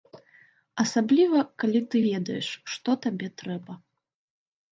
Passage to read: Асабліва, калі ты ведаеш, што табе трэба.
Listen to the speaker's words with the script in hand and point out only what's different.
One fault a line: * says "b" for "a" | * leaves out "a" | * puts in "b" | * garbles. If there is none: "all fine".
all fine